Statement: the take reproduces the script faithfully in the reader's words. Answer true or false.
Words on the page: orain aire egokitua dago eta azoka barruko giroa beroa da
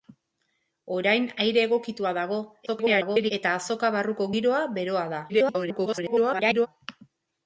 false